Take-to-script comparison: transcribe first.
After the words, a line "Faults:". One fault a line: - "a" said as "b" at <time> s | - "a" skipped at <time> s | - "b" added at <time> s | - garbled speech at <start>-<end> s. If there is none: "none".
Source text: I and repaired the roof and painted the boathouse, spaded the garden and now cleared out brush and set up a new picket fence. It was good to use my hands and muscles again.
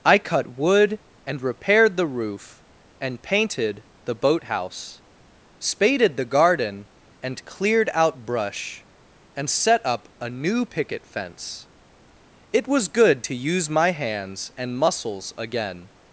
I cut wood and repaired the roof and painted the boathouse, spaded the garden and cleared out brush and set up a new picket fence. It was good to use my hands and muscles again.
Faults:
- "cut wood" added at 0.2 s
- "now" skipped at 7.5 s